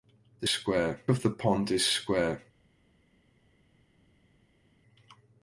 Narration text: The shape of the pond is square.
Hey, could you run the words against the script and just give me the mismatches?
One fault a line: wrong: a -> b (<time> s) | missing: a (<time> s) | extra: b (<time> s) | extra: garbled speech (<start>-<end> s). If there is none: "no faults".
wrong: shape -> square (0.4 s)